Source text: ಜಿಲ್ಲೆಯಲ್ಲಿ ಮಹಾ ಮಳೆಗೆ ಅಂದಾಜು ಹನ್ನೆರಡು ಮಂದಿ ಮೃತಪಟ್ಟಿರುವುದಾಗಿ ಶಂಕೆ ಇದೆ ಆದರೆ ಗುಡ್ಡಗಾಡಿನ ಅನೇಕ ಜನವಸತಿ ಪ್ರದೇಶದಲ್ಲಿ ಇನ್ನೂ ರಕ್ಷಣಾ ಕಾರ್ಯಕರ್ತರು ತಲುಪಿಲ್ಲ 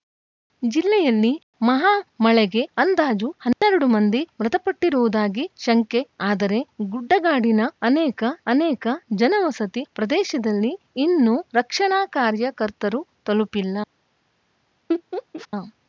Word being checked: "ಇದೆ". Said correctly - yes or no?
no